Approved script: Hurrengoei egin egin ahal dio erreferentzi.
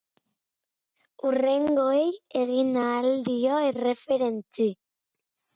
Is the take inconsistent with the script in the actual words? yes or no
yes